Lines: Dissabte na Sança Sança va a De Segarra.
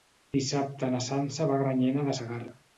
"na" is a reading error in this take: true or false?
false